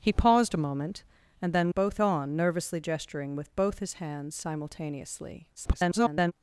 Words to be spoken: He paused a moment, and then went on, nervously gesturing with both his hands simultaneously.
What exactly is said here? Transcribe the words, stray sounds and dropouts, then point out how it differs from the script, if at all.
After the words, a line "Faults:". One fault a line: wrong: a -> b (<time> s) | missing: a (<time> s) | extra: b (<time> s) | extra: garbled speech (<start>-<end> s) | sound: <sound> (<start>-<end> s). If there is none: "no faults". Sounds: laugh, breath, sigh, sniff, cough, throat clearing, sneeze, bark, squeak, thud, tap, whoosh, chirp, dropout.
He paused a moment, and then both on, nervously gesturing with both his hands simultaneously. [garbled]
Faults:
wrong: went -> both (1.7 s)
extra: garbled speech (5.6-6.3 s)